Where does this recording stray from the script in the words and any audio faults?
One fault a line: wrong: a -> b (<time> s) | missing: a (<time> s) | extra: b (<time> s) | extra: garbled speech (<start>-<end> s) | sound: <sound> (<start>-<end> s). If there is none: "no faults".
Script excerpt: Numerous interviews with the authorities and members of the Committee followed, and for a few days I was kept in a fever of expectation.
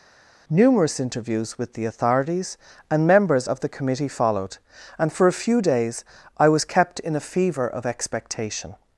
no faults